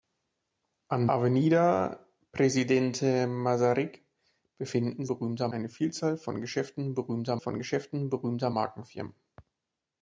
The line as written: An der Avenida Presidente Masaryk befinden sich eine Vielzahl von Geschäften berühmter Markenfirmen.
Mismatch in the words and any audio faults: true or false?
true